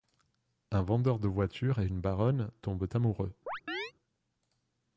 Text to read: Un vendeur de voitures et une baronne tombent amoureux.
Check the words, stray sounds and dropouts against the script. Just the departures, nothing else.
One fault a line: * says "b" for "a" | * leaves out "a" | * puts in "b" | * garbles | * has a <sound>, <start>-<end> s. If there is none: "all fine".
* has a chirp, 3.5-3.9 s